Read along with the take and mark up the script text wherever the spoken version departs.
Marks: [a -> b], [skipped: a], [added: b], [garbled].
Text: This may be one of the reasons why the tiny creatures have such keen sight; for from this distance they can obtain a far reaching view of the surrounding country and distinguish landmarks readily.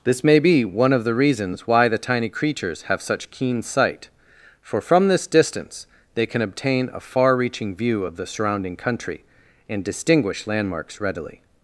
This may be one of the reasons why the tiny creatures have such keen sight; for from this distance they can obtain a far reaching view of the surrounding country and distinguish landmarks readily.